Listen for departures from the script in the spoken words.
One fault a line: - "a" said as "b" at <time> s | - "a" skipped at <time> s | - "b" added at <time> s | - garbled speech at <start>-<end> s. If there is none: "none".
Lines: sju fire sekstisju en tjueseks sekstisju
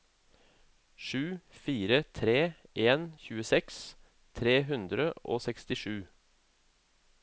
- "sekstisju" said as "tre" at 2.2 s
- "tre hundre og" added at 4.4 s